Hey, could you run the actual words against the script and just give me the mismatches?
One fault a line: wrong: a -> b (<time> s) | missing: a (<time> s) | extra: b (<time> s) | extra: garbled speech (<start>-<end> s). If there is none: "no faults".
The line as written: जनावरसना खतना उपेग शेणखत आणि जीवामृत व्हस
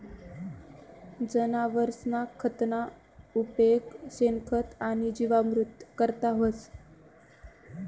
extra: करता (6.0 s)